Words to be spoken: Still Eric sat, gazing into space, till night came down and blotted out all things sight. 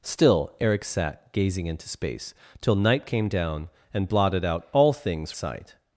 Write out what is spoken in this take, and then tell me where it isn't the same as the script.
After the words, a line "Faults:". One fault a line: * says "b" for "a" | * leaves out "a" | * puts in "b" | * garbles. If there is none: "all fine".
Still Eric sat, gazing into space, till night came down and blotted out all things sight.
Faults:
all fine